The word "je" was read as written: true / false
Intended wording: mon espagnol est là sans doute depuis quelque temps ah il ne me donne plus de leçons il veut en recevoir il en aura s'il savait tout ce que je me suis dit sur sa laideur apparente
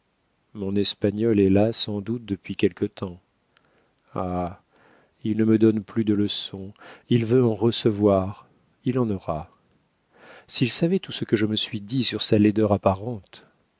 true